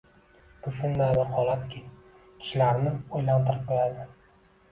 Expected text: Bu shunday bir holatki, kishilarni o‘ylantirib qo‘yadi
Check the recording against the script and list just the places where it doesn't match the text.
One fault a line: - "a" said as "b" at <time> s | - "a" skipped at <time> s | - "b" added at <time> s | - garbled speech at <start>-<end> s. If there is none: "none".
none